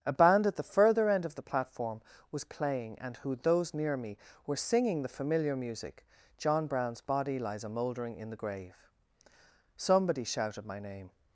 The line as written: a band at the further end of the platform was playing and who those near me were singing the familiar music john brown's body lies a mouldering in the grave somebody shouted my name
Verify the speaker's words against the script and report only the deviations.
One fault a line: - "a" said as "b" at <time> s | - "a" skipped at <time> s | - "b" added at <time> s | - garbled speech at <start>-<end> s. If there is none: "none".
none